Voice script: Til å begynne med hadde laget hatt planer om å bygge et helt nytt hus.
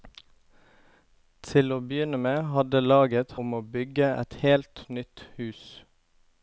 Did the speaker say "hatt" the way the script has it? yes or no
no